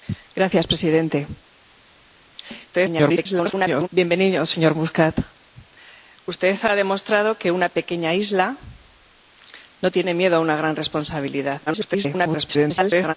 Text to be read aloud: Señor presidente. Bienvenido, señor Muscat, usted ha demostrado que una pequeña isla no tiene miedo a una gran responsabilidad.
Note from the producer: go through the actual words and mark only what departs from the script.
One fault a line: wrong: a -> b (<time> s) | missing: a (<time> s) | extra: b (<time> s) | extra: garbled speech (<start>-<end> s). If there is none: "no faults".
extra: garbled speech (2.7-3.9 s)
extra: garbled speech (11.7-13.1 s)